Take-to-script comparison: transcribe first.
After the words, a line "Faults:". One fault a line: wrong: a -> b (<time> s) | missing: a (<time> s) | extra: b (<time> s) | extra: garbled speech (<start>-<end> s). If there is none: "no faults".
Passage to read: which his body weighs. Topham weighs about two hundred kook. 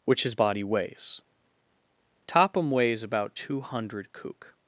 which his body weighs. Topham weighs about two hundred kook.
Faults:
no faults